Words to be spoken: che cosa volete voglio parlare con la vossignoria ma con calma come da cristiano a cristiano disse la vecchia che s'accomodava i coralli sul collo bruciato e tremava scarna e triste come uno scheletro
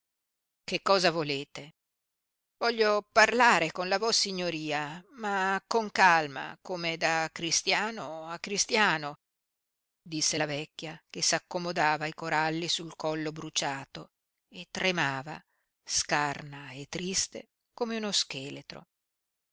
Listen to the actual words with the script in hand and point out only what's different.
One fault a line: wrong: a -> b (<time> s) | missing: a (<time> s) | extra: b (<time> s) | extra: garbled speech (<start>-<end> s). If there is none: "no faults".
no faults